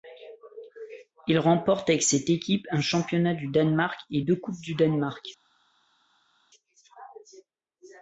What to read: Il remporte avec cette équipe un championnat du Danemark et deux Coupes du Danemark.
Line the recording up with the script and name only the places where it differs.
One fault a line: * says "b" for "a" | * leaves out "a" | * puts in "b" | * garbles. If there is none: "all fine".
all fine